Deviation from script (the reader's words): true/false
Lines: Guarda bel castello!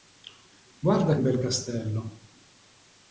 false